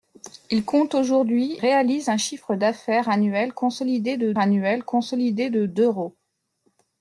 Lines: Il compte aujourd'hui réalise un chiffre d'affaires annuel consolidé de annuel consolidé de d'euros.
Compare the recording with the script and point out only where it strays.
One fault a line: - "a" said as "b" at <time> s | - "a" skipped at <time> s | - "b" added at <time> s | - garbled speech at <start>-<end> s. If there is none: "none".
none